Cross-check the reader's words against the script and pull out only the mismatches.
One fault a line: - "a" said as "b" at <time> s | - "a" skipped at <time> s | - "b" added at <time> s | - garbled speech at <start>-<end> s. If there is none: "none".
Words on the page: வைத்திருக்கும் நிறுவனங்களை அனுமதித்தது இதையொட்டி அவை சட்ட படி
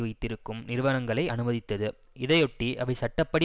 none